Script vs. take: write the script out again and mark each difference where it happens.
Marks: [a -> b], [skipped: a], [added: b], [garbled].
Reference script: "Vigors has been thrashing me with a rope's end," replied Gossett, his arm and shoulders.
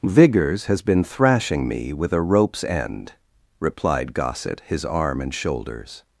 "Vigors has been thrashing me with a rope's end," replied Gossett, his arm and shoulders.